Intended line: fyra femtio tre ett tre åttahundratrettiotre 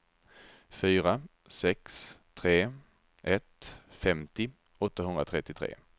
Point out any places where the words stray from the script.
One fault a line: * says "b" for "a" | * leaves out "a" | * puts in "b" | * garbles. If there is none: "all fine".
* says "sex" for "femtio"
* says "femtio" for "tre"